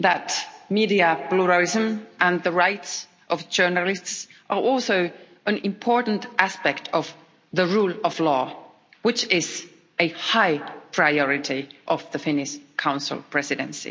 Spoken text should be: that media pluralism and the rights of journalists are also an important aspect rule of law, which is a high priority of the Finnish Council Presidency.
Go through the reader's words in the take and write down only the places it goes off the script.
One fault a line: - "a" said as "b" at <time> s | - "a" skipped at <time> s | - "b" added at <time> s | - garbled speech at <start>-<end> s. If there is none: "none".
- "of the" added at 6.9 s